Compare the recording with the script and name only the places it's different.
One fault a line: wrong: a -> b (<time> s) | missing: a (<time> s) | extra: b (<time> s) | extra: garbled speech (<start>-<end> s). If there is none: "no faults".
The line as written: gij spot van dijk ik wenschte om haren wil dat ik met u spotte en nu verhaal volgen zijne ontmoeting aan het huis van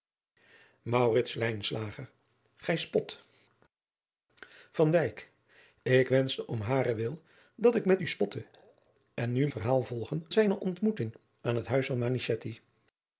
no faults